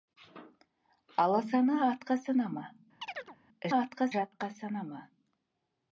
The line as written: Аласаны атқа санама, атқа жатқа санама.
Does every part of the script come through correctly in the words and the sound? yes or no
no